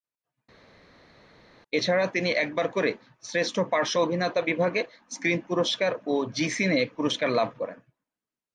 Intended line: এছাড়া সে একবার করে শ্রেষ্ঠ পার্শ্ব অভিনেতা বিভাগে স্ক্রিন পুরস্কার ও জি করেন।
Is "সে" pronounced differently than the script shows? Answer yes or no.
yes